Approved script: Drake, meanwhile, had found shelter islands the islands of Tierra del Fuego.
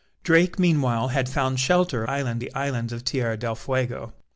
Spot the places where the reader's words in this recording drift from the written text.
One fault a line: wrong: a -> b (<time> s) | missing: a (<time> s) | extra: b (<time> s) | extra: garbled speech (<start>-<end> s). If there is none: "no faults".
no faults